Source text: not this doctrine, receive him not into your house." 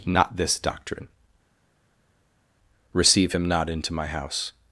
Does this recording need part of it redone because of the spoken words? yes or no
yes